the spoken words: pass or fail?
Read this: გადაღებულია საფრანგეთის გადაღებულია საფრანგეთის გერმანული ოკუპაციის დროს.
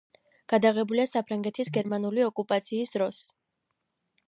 fail